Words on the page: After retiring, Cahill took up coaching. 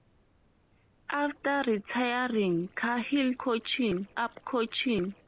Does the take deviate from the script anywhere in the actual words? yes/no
yes